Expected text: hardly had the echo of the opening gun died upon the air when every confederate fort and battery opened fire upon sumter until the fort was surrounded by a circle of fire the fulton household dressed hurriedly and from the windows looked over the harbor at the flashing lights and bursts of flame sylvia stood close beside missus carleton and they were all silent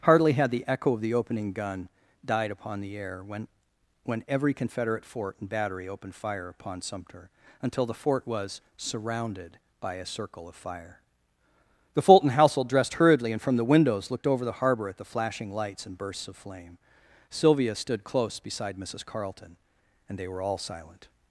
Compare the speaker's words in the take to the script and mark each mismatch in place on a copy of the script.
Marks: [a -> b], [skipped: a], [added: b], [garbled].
hardly had the echo of the opening gun died upon the air when [added: when] every confederate fort and battery opened fire upon sumter until the fort was surrounded by a circle of fire the fulton household dressed hurriedly and from the windows looked over the harbor at the flashing lights and bursts of flame sylvia stood close beside missus carleton and they were all silent